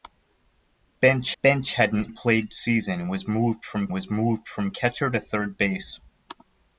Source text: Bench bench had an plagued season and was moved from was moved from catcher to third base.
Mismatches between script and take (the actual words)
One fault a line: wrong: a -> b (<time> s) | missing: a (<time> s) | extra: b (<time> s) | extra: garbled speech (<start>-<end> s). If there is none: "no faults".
no faults